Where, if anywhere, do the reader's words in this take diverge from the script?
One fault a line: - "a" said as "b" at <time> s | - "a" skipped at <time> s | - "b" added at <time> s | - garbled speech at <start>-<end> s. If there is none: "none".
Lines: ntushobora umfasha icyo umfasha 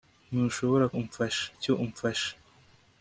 none